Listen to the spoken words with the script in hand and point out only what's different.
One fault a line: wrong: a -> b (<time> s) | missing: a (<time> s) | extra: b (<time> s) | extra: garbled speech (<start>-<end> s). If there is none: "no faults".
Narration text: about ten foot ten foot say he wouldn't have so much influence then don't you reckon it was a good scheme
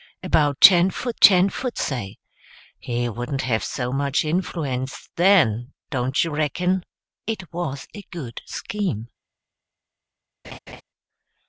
no faults